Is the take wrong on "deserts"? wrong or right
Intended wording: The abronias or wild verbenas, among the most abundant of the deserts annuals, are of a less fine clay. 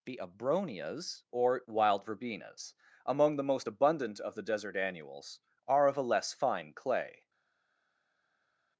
wrong